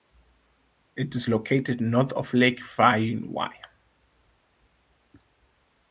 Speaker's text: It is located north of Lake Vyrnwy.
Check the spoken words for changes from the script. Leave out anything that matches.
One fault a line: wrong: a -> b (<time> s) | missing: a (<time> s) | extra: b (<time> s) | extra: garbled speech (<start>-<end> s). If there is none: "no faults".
no faults